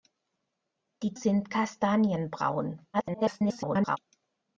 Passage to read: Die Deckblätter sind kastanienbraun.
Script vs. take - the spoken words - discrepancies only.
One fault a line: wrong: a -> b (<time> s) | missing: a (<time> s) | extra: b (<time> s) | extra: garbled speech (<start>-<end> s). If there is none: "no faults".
missing: Deckblätter (1.1 s)
extra: garbled speech (2.9-4.0 s)